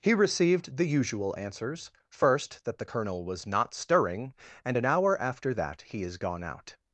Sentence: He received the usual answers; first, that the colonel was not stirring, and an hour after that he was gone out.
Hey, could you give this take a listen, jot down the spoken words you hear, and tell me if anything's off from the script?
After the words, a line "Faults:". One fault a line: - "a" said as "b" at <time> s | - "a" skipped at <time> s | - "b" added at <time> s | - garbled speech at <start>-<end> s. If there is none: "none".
He received the usual answers; first, that the colonel was not stirring, and an hour after that he is gone out.
Faults:
- "was" said as "is" at 6.0 s